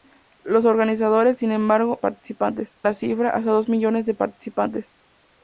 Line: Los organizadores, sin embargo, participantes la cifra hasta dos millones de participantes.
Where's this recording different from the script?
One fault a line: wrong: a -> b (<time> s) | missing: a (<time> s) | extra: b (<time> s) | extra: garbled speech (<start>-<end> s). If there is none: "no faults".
no faults